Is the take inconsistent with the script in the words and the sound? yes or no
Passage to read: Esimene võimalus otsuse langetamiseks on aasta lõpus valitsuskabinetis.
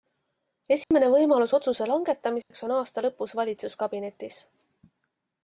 yes